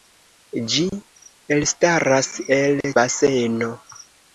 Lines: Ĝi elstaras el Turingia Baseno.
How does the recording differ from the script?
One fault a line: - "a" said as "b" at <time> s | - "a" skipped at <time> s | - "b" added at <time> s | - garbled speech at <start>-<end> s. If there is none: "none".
- "Turingia" skipped at 2.8 s